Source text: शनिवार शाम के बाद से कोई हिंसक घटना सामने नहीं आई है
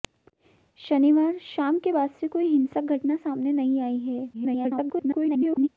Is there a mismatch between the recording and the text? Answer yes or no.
yes